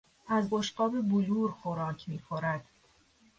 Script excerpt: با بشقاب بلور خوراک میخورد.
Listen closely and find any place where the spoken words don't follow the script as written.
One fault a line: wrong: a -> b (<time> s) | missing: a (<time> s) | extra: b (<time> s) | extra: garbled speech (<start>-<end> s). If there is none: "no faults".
wrong: با -> از (0.3 s)